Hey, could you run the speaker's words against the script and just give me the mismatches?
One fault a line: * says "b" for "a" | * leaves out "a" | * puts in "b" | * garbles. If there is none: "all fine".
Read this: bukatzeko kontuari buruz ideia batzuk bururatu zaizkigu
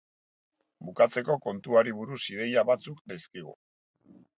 * leaves out "bururatu"